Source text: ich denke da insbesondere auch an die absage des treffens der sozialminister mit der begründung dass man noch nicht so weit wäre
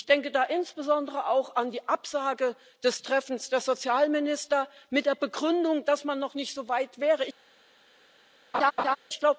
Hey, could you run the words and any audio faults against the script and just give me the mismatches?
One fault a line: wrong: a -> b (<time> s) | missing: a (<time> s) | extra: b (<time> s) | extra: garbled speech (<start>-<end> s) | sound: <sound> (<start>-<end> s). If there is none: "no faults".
sound: laugh (8.5-9.0 s)